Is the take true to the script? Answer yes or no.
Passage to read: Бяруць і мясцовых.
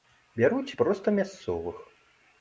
no